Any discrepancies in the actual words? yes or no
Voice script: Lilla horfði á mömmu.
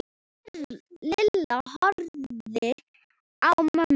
no